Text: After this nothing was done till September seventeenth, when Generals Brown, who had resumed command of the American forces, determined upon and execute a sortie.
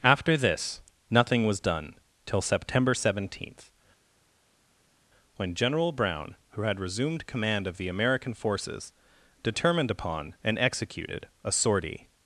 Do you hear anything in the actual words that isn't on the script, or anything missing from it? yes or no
yes